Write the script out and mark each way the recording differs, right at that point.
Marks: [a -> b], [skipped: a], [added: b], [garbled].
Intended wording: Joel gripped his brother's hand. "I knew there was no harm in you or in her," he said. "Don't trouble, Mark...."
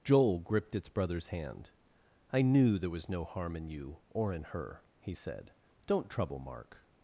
Joel gripped [his -> its] brother's hand. "I knew there was no harm in you or in her," he said. "Don't trouble, Mark...."